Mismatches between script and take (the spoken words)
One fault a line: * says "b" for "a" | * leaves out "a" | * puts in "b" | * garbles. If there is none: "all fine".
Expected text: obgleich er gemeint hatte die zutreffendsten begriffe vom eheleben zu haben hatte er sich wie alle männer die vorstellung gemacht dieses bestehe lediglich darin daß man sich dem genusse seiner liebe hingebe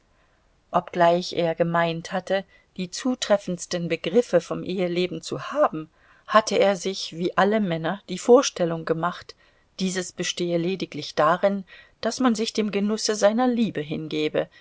all fine